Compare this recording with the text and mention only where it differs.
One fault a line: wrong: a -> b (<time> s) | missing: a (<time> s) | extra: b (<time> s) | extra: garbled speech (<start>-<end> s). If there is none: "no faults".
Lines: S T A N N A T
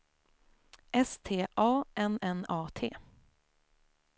no faults